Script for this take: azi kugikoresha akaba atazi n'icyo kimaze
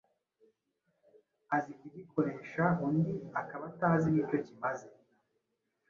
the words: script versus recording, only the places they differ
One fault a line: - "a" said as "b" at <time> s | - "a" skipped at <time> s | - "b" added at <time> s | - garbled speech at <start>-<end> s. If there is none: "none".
- "undi" added at 2.9 s